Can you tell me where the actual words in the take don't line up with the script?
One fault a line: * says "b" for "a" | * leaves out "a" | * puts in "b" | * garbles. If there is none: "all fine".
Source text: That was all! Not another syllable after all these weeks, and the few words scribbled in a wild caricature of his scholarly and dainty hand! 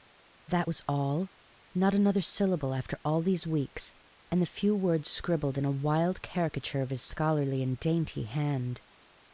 all fine